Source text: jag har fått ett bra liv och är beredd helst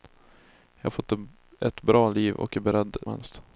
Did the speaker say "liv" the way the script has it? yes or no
yes